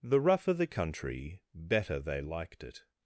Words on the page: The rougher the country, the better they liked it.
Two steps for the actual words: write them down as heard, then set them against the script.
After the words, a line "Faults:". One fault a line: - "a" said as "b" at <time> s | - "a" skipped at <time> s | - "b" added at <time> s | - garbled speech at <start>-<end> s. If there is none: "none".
The rougher the country, better they liked it.
Faults:
- "the" skipped at 1.4 s